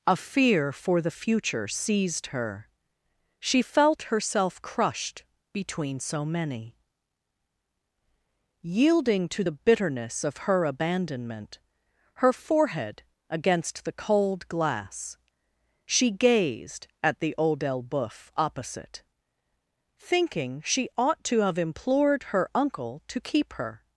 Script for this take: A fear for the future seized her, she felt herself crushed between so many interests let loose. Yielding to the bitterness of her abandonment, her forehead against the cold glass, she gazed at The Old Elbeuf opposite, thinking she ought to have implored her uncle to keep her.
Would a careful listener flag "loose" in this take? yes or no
yes